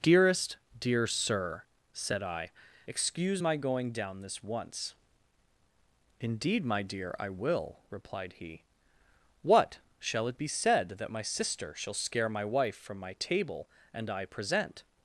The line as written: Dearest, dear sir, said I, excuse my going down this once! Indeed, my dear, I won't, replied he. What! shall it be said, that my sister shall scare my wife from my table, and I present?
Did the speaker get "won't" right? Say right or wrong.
wrong